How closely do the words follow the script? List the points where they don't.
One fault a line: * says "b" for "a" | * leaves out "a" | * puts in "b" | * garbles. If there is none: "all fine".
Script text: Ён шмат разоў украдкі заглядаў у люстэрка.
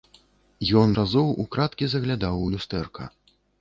* leaves out "шмат"